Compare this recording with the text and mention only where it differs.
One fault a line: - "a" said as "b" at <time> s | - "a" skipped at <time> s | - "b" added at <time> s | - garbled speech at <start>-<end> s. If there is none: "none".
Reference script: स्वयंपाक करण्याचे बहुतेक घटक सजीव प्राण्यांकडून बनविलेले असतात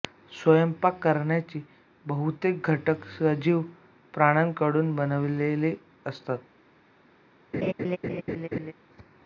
none